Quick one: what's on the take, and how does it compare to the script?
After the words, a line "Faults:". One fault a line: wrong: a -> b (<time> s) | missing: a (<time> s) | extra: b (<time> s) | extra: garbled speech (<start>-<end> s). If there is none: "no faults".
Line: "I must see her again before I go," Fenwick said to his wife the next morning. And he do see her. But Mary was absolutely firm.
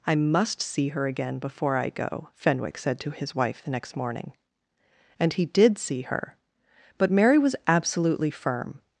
"I must see her again before I go," Fenwick said to his wife the next morning. And he did see her. But Mary was absolutely firm.
Faults:
wrong: do -> did (5.5 s)